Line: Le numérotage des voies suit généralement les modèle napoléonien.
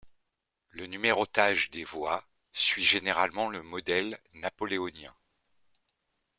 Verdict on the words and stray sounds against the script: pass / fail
fail